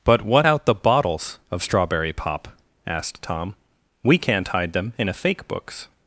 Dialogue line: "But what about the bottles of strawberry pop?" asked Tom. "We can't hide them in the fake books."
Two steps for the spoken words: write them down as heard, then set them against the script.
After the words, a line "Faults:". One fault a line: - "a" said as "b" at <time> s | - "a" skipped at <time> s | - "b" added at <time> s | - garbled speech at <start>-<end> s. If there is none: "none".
"But what out the bottles of strawberry pop?" asked Tom. "We can't hide them in a fake books."
Faults:
- "about" said as "out" at 0.5 s
- "the" said as "a" at 5.1 s